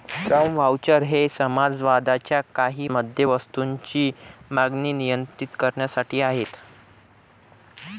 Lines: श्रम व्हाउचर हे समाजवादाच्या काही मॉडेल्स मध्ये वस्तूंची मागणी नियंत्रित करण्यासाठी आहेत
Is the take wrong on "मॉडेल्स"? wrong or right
wrong